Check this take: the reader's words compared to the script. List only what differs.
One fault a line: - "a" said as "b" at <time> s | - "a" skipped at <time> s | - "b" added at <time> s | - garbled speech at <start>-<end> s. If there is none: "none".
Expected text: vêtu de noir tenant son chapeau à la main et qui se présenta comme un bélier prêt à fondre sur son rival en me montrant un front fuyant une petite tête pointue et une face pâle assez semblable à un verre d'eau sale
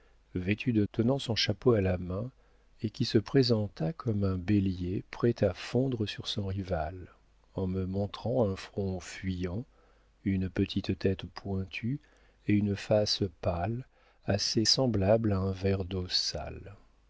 - "noir" skipped at 0.8 s